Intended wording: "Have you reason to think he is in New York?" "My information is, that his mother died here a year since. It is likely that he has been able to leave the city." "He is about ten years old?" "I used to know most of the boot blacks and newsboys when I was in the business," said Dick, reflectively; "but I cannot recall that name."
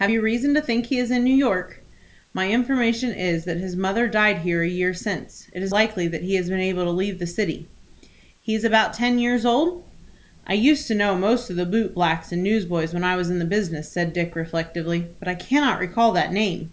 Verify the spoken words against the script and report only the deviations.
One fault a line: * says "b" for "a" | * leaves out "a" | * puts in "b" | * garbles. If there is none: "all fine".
all fine